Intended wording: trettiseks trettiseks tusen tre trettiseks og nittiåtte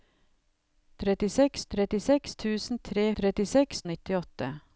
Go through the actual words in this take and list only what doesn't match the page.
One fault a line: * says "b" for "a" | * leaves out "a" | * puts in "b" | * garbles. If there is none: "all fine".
all fine